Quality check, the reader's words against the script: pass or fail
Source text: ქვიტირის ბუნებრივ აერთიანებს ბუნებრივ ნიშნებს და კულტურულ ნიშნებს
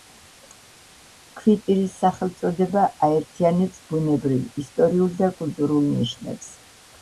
fail